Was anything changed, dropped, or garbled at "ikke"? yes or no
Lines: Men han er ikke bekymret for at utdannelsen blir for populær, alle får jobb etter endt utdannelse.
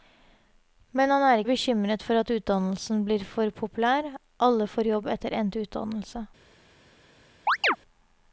yes